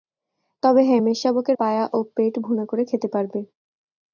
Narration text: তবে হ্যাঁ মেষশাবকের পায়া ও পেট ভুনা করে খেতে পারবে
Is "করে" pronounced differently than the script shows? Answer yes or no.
no